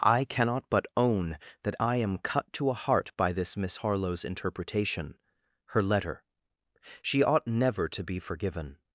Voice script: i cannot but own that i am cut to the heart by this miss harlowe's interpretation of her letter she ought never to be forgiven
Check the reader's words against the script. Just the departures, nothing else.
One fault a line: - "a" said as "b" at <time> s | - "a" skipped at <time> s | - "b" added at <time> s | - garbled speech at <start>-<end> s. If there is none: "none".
- "the" said as "a" at 2.7 s
- "of" skipped at 5.2 s